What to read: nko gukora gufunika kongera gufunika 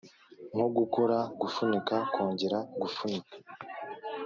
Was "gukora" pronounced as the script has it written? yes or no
yes